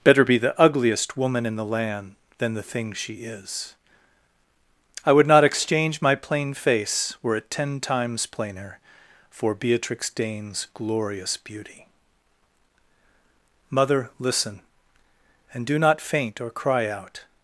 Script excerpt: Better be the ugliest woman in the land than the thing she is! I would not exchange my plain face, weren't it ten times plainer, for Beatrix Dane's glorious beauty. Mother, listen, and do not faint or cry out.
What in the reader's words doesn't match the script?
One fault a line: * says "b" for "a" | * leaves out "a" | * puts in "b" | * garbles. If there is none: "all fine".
* says "were" for "weren't"